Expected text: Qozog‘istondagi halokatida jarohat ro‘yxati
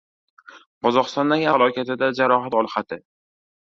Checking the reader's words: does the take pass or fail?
pass